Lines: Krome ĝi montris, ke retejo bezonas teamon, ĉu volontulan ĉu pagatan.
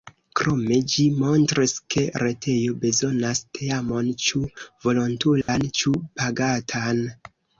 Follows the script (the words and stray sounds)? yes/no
no